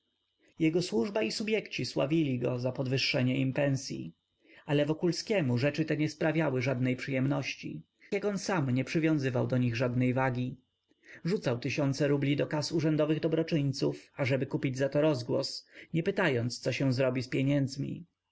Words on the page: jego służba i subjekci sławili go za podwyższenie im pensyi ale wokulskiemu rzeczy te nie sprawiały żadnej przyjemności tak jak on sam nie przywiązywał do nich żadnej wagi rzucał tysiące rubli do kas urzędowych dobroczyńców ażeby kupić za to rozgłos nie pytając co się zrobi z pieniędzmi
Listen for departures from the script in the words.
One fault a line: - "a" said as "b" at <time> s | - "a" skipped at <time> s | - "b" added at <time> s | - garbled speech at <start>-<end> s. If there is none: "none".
- "tak" skipped at 7.8 s